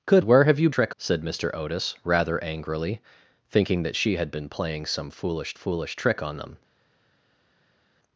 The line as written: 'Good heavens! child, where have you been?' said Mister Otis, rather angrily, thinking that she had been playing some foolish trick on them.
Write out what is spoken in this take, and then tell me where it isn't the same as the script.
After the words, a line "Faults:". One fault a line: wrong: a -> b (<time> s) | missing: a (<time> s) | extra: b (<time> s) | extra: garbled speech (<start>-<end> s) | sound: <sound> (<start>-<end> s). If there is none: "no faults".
'Good where have you trick?' said Mister Otis, rather angrily, thinking that she had been playing some foolish foolish trick on them.
Faults:
missing: heavens child (0.2 s)
wrong: been -> trick (0.7 s)
extra: foolish (5.5 s)